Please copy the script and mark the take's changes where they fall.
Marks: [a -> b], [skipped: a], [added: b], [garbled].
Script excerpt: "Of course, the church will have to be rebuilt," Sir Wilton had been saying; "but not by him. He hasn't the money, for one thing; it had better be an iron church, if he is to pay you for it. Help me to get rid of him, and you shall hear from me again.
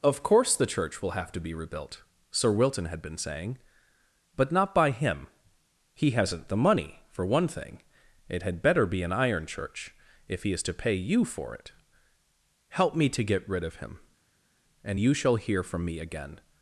"Of course, the church will have to be rebuilt," Sir Wilton had been saying; "but not by him. He hasn't the money, for one thing; it had better be an iron church, if he is to pay you for it. Help me to get rid of him, and you shall hear from me again.